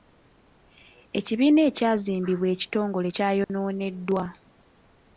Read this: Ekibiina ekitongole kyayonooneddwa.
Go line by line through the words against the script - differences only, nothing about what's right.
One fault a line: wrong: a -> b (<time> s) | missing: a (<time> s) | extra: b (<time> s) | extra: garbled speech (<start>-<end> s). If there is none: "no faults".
extra: ekyazimbibwa (1.7 s)